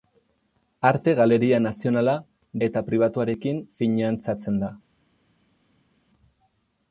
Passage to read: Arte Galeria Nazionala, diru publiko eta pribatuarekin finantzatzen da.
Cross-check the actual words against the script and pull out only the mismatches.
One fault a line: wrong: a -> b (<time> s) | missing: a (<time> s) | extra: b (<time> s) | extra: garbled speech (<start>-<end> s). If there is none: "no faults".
missing: diru publiko (2.1 s)